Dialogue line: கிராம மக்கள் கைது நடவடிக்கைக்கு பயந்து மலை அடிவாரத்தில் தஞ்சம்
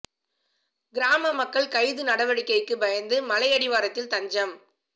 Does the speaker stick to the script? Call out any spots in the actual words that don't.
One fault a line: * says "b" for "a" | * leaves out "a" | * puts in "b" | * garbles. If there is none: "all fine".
all fine